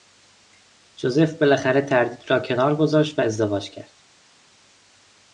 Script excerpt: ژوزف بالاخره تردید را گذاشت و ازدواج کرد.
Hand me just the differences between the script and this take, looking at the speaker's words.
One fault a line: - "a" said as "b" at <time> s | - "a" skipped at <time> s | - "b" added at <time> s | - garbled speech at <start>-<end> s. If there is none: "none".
- "کنار" added at 2.4 s